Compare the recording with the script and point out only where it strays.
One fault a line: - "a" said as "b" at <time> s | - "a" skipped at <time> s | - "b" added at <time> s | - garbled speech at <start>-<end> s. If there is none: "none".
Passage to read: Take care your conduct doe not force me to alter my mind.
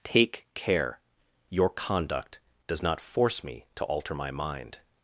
- "doe" said as "does" at 2.7 s